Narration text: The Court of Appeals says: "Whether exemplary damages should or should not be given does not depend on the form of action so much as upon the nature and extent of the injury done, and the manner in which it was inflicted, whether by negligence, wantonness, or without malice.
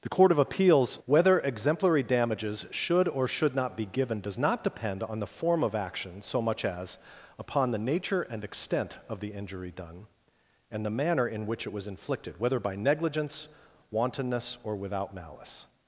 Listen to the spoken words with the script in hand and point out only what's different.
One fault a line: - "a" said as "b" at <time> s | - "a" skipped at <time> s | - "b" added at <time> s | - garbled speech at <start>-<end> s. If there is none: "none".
- "says" skipped at 1.0 s